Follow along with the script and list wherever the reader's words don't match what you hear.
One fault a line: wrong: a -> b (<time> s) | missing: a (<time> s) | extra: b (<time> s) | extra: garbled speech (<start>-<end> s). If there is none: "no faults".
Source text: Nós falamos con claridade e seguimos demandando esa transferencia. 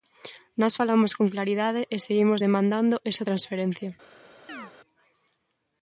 no faults